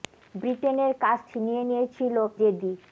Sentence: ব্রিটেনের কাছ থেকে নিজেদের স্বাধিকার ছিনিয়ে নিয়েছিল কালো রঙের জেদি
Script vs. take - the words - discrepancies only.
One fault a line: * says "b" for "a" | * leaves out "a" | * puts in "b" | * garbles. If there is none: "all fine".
* leaves out "থেকে নিজেদের স্বাধিকার"
* leaves out "কালো রঙের"